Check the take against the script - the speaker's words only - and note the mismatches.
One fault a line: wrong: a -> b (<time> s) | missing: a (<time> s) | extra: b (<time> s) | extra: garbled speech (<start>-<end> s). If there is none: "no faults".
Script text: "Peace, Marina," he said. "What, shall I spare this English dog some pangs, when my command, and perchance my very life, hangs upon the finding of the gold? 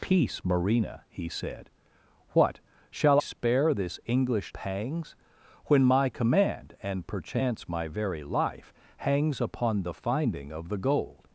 missing: I (3.2 s)
missing: dog some (4.5 s)